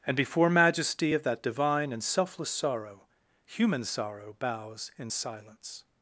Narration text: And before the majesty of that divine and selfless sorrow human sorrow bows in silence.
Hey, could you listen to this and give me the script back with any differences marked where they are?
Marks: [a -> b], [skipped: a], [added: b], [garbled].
And before [skipped: the] majesty of that divine and selfless sorrow human sorrow bows in silence.